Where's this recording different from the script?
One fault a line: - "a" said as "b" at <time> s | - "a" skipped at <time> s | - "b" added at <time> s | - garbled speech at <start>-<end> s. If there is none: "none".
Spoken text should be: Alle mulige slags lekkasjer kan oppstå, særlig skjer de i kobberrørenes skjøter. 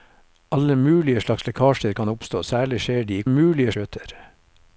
- "kobberrørenes" said as "mulige" at 3.3 s